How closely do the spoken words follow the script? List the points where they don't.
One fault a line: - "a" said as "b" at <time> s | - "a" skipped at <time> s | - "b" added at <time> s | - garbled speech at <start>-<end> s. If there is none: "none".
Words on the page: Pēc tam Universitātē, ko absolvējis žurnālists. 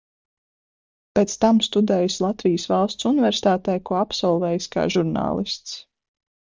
- "studējis Latvijas Valsts" added at 1.7 s
- "kā" added at 4.8 s